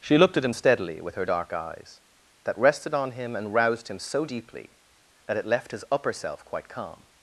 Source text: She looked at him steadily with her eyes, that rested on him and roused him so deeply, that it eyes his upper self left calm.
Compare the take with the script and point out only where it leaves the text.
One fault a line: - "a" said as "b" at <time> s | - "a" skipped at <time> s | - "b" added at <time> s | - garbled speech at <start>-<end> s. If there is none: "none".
- "dark" added at 1.2 s
- "eyes" said as "left" at 5.5 s
- "left" said as "quite" at 6.4 s